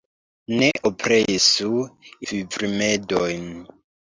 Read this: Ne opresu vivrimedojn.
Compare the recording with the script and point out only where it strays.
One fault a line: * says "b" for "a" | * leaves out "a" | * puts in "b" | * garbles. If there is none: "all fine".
all fine